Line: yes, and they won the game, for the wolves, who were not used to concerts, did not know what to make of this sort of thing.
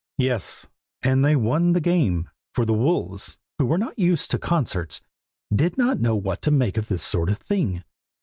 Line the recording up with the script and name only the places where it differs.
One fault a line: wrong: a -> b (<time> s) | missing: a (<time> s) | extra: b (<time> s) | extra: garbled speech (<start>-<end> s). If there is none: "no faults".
no faults